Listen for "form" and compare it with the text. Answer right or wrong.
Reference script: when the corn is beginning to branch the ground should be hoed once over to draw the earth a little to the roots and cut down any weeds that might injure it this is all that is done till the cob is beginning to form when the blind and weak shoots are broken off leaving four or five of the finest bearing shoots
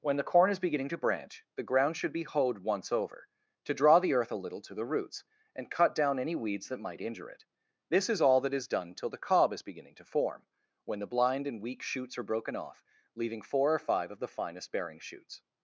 right